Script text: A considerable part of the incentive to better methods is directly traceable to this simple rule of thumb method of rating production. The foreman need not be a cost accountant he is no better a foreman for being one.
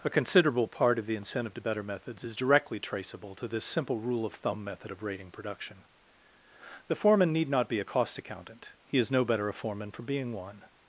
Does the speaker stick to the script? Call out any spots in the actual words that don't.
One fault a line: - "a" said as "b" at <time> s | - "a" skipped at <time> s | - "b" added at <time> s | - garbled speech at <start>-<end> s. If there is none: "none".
none